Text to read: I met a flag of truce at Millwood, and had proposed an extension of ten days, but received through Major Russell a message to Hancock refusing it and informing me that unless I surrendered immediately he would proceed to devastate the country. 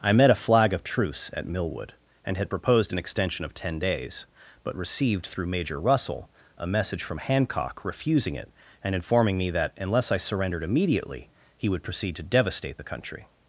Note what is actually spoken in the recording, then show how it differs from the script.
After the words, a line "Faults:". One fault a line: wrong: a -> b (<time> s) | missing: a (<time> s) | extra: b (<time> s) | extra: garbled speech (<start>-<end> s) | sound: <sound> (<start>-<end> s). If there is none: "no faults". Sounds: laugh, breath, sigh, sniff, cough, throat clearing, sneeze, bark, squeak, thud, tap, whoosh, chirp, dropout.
I met a flag of truce at Millwood, and had proposed an extension of ten days, but received through Major Russell a message from Hancock refusing it and informing me that unless I surrendered immediately he would proceed to devastate the country.
Faults:
wrong: to -> from (7.0 s)